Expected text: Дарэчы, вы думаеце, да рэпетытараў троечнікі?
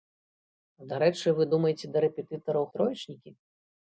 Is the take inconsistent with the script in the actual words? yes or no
no